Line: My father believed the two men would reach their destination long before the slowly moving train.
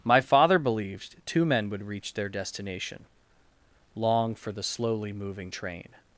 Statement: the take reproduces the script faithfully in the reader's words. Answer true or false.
false